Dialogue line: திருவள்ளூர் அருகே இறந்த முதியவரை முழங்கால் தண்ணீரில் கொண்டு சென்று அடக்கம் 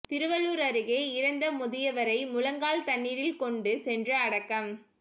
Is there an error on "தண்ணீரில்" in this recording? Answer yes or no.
no